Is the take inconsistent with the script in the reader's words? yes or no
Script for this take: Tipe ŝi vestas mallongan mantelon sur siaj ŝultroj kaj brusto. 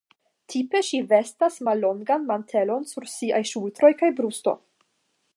no